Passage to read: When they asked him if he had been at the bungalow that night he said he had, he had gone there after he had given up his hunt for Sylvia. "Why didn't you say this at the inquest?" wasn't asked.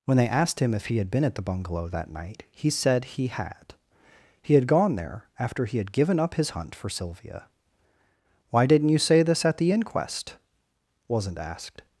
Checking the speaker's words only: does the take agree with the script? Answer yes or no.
yes